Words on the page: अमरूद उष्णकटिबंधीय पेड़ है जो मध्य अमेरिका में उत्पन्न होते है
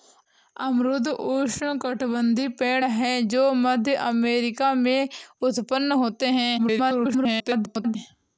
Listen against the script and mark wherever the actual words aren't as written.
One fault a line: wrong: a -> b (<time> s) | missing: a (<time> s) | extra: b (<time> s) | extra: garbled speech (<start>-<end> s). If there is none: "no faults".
extra: garbled speech (6.6-8.0 s)